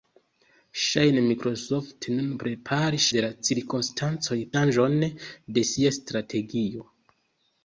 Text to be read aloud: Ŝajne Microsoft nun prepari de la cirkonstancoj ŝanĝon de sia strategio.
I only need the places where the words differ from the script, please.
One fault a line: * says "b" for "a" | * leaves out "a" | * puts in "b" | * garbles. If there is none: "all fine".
all fine